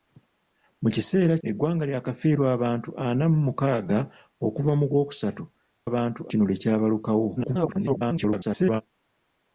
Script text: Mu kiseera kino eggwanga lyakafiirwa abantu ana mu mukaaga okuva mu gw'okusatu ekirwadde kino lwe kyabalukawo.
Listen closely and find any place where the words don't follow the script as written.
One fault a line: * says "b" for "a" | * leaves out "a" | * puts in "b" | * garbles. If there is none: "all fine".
* leaves out "kino"
* says "abantu" for "ekirwadde"
* garbles